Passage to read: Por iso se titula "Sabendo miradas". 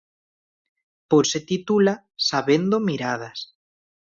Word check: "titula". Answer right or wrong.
right